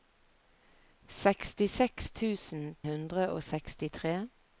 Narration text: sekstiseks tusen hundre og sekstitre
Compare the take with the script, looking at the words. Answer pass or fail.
pass